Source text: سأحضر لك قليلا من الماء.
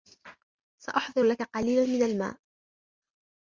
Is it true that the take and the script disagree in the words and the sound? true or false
false